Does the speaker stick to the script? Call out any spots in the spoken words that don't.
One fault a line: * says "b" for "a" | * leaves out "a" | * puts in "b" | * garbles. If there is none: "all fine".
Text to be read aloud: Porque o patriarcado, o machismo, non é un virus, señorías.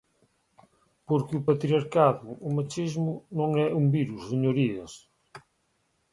all fine